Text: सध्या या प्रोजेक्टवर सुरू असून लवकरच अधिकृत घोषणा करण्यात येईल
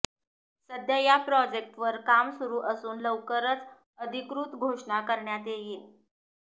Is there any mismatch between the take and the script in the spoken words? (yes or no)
yes